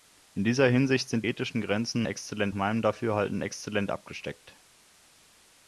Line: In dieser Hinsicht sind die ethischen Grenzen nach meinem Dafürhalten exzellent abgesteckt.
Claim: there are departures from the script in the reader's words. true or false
true